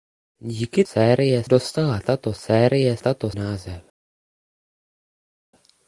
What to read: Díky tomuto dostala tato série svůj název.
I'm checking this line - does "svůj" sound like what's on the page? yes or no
no